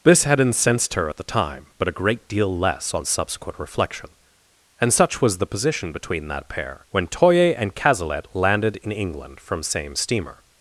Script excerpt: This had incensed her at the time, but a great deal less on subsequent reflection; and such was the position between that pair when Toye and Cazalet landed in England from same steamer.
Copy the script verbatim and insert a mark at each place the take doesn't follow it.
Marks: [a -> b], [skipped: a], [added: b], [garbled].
This had incensed her at the time, but a great deal less on subsequent reflection; and such was the position between that pair when Toye and Cazalet landed in England from same steamer.